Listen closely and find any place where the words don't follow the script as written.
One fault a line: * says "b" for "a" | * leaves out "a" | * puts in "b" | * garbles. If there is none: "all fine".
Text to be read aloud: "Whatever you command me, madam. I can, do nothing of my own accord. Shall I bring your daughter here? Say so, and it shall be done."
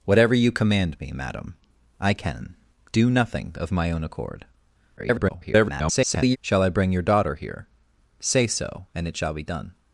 * garbles